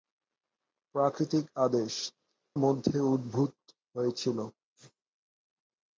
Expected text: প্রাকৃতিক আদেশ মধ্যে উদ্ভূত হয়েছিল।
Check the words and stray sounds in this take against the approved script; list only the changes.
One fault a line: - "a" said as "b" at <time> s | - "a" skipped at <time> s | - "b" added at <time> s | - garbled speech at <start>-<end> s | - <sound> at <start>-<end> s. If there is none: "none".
none